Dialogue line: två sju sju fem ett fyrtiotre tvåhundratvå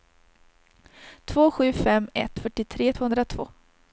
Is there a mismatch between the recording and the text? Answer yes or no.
yes